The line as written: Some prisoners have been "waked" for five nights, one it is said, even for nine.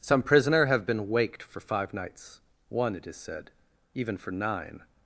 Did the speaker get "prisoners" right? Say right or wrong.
wrong